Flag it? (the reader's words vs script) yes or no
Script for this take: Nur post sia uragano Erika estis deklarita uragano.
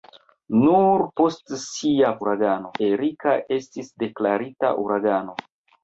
no